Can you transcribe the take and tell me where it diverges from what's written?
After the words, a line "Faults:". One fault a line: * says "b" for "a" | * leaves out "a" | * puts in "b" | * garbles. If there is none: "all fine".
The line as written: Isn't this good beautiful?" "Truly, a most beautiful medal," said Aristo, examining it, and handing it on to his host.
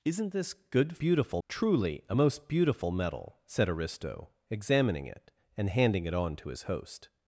Isn't this good beautiful?" "Truly, a most beautiful medal," said Aristo, examining it, and handing it on to his host.
Faults:
all fine